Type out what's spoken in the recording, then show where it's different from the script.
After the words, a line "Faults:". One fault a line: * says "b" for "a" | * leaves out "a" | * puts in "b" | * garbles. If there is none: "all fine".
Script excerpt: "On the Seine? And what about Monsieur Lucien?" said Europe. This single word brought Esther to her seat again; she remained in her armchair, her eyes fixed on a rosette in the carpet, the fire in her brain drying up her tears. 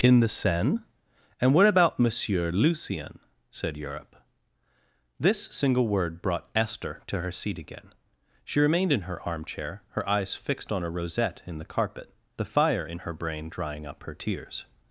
"In the Seine? And what about Monsieur Lucien?" said Europe. This single word brought Esther to her seat again; she remained in her armchair, her eyes fixed on a rosette in the carpet, the fire in her brain drying up her tears.
Faults:
* says "In" for "On"